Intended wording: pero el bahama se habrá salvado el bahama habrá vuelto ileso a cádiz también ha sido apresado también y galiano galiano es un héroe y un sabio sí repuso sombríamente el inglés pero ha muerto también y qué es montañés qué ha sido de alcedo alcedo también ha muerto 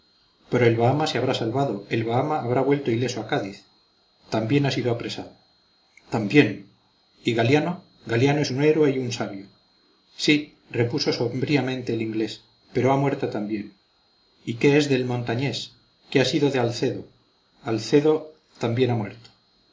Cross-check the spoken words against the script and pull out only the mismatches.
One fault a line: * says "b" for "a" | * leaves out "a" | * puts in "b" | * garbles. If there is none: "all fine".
* puts in "del"